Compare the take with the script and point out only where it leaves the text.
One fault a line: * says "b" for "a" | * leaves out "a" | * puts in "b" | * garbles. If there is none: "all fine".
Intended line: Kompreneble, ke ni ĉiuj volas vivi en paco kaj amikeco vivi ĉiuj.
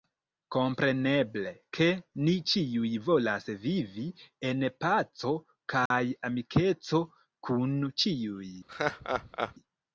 * says "kun" for "vivi"